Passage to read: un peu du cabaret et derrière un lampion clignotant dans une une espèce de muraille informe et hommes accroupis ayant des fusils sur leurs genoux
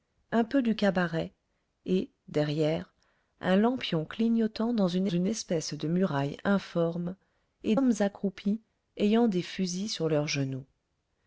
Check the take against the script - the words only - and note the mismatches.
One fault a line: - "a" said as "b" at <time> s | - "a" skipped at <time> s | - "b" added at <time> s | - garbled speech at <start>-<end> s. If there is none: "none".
none